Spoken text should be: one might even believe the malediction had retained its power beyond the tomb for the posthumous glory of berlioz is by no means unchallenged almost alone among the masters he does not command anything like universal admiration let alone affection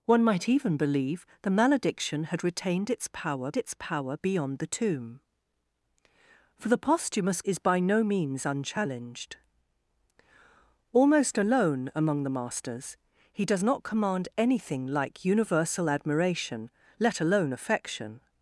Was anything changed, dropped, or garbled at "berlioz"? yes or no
yes